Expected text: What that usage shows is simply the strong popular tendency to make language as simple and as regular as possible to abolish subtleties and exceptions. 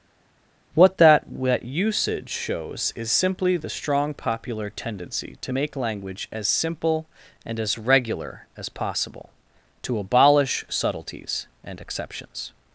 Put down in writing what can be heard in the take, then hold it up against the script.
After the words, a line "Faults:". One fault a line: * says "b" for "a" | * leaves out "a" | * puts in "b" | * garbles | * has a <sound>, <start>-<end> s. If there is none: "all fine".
What that that usage shows is simply the strong popular tendency to make language as simple and as regular as possible to abolish subtleties and exceptions.
Faults:
* puts in "that"